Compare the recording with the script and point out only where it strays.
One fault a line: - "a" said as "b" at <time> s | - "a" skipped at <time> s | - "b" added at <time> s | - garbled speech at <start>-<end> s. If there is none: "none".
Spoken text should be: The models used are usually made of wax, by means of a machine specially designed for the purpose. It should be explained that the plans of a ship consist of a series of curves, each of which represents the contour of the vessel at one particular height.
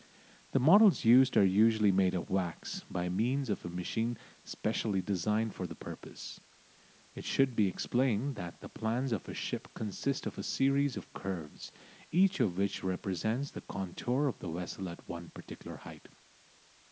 none